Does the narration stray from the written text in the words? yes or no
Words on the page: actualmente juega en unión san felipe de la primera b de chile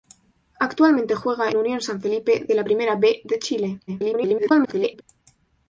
yes